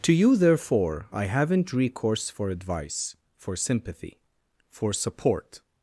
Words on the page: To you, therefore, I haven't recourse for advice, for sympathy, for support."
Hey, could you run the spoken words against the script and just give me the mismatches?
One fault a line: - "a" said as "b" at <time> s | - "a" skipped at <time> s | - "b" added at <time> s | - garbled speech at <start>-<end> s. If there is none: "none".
none